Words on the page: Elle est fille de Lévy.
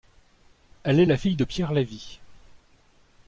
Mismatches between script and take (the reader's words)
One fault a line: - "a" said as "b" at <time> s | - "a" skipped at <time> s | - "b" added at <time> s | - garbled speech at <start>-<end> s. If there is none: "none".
- "la" added at 1.0 s
- "Pierre" added at 1.4 s